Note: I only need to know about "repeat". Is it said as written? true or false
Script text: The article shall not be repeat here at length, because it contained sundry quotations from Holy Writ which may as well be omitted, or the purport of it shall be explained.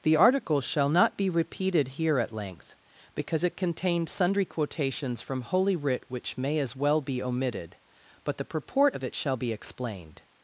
false